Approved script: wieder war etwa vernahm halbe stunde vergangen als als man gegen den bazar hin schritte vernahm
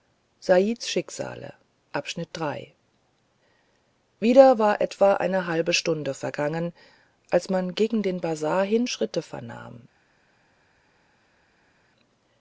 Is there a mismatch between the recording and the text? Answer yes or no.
yes